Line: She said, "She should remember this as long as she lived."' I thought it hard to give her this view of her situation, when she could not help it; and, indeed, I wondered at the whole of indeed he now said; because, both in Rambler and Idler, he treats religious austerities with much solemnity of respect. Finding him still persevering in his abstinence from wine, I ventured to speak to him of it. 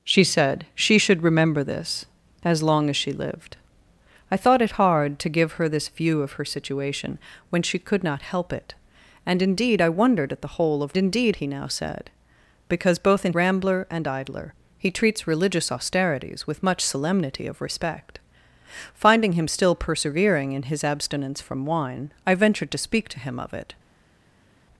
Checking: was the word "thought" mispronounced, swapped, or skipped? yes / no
no